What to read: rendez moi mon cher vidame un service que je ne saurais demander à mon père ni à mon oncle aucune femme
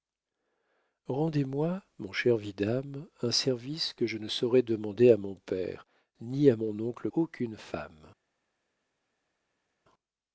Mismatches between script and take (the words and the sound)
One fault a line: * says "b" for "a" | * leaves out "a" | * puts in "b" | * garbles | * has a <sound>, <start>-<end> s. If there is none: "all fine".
all fine